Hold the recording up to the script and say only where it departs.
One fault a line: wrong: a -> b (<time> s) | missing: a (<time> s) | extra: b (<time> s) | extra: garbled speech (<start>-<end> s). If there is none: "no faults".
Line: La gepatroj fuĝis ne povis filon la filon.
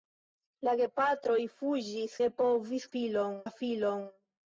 no faults